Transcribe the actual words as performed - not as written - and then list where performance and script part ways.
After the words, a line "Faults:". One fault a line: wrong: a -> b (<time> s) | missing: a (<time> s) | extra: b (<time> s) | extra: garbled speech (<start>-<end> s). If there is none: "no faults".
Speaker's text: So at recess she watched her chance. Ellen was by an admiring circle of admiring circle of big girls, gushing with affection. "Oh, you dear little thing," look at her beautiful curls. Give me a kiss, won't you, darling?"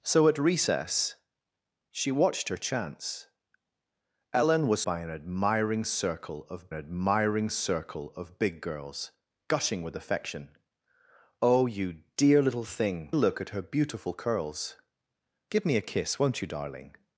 So at recess she watched her chance. Ellen was by an admiring circle of admiring circle of big girls, gushing with affection. "Oh, you dear little thing," look at her beautiful curls. Give me a kiss, won't you, darling?"
Faults:
no faults